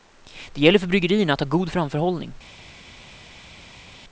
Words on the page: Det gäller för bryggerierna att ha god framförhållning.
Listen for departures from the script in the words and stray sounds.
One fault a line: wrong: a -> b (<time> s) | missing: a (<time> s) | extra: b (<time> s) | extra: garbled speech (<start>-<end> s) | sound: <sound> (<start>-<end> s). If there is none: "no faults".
no faults